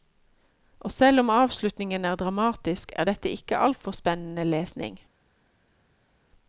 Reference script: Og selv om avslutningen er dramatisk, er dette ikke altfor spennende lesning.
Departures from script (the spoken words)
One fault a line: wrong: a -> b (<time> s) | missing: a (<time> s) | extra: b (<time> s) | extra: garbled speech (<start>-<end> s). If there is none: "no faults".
no faults